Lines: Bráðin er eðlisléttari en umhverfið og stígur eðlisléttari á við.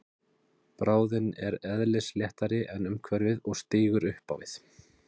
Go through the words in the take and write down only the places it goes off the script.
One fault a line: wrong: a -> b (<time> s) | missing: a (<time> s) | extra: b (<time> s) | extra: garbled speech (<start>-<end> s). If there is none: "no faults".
wrong: eðlisléttari -> upp (4.1 s)